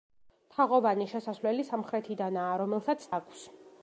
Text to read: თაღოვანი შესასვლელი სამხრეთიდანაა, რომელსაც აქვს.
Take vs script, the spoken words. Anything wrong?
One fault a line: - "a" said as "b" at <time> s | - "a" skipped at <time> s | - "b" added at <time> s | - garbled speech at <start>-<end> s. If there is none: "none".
none